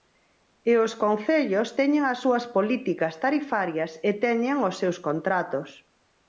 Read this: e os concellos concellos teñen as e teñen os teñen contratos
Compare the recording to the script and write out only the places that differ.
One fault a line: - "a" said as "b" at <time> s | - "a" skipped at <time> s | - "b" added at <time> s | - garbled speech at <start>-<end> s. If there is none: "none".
- "concellos" skipped at 1.7 s
- "súas políticas tarifarias" added at 2.2 s
- "teñen" said as "seus" at 4.8 s